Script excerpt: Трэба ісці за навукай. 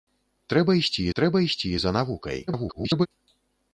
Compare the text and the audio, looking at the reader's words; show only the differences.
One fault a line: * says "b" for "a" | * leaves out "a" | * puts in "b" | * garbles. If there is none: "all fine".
* puts in "трэба ісці"
* garbles